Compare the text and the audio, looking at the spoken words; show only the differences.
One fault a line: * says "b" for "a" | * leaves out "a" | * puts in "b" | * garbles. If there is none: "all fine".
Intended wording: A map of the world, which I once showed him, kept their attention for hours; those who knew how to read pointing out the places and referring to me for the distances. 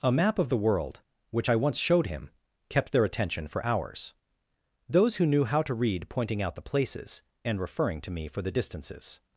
all fine